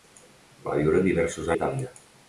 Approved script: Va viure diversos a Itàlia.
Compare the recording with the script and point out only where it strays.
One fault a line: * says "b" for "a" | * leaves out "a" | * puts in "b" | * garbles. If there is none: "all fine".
all fine